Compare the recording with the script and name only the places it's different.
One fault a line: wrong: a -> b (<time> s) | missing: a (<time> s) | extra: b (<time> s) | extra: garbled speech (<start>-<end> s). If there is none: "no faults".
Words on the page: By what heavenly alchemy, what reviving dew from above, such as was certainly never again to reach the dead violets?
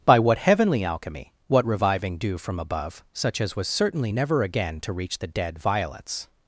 no faults